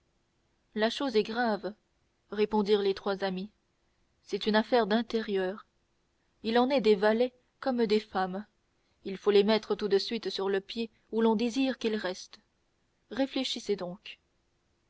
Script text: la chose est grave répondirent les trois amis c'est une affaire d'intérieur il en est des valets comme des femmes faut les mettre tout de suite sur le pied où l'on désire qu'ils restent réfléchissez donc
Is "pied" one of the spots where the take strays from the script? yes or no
no